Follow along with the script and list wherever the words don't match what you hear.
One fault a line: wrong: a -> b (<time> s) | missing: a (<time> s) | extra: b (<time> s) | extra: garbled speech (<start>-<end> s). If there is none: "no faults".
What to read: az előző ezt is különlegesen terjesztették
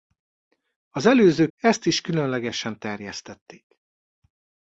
no faults